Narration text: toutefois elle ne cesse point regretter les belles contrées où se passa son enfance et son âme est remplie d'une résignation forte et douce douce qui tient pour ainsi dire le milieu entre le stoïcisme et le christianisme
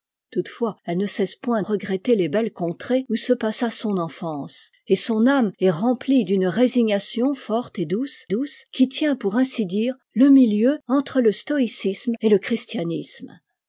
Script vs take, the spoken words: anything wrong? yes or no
no